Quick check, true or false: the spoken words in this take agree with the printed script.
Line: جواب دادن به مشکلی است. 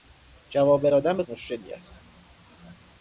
true